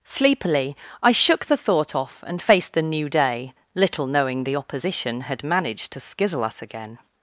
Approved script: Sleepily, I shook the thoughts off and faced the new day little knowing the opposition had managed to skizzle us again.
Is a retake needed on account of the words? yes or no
yes